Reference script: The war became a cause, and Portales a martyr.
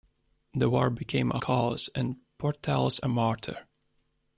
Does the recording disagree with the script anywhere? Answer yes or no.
no